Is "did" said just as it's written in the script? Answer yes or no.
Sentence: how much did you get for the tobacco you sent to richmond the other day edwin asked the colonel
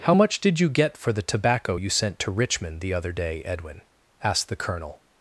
yes